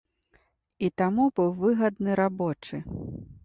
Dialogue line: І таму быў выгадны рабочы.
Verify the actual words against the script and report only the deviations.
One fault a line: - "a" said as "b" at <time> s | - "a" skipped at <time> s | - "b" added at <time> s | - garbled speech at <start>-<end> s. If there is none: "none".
none